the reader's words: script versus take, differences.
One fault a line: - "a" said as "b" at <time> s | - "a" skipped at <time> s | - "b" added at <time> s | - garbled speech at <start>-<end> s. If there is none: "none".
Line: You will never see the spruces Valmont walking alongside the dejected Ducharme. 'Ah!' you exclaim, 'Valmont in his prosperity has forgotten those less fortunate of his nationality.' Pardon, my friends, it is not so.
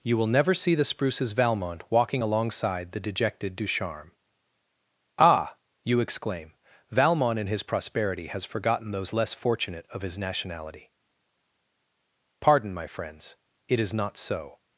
none